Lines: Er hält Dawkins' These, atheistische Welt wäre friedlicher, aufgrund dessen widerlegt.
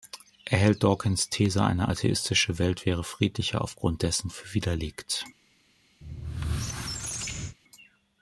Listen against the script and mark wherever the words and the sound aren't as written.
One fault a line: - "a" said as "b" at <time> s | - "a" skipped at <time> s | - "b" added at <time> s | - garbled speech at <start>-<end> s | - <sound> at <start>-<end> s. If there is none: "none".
- "eine" added at 1.6 s
- "für" added at 4.3 s
- squeak at 6.0-7.6 s